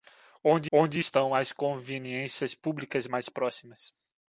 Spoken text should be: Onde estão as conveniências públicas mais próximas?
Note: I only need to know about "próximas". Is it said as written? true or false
true